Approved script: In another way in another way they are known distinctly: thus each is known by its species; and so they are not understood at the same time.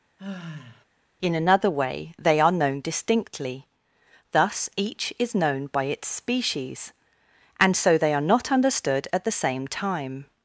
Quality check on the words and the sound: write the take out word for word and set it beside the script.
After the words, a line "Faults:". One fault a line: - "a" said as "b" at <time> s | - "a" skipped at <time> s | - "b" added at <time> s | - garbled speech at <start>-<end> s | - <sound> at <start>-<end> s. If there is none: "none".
In another way they are known distinctly: thus each is known by its species; and so they are not understood at the same time.
Faults:
- sigh at 0.2-0.8 s
- "in another way" skipped at 2.1 s